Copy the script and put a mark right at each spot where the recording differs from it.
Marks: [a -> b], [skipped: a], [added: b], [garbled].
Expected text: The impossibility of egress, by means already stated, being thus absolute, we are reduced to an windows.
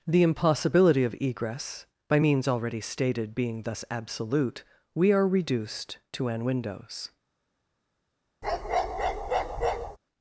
The impossibility of egress, by means already stated, being thus absolute, we are reduced to an windows.